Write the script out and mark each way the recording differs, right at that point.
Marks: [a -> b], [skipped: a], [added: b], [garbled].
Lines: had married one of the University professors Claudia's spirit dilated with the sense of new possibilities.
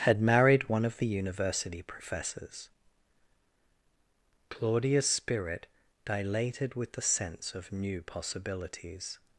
had married one of the University professors Claudia's spirit dilated with the sense of new possibilities.